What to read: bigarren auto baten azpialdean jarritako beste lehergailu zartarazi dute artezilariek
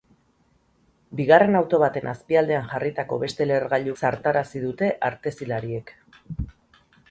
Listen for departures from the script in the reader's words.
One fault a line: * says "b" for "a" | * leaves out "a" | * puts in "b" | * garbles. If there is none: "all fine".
all fine